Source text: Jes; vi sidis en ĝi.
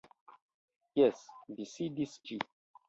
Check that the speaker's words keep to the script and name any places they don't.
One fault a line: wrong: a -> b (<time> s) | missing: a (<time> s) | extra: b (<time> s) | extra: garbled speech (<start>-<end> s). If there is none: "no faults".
missing: en (2.1 s)